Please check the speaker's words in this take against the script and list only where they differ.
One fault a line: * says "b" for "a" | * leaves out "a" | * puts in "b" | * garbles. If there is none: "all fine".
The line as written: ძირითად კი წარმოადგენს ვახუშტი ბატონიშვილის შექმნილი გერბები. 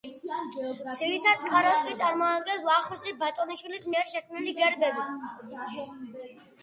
* puts in "წყაროს"
* puts in "მიერ"